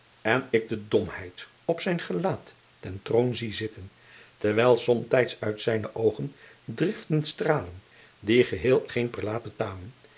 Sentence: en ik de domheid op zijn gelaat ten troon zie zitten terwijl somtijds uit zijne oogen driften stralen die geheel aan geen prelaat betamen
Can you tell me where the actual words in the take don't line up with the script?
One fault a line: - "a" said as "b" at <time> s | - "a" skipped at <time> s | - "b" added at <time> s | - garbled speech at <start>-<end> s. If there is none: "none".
- "aan" skipped at 8.9 s